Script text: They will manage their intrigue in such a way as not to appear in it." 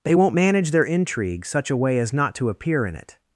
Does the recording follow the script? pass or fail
fail